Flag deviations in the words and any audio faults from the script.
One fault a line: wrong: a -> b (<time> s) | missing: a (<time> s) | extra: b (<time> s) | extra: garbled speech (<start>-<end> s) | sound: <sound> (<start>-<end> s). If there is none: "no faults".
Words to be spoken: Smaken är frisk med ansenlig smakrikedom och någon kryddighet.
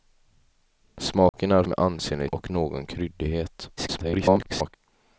sound: dropout (1.3-1.3 s)
missing: frisk (1.6 s)
missing: smakrikedom (2.3 s)
extra: garbled speech (3.8-4.7 s)